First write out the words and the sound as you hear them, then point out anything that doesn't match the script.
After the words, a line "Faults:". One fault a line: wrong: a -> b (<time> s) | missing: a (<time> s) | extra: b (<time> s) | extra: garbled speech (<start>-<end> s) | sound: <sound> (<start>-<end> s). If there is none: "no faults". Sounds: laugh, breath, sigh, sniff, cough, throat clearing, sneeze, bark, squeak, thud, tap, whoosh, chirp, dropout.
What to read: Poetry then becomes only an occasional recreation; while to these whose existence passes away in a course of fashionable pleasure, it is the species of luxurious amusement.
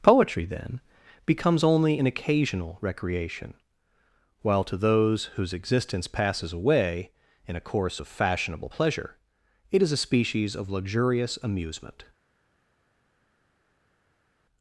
Poetry then becomes only an occasional recreation; while to those whose existence passes away in a course of fashionable pleasure, it is a species of luxurious amusement.
Faults:
wrong: these -> those (4.8 s)
wrong: the -> a (9.9 s)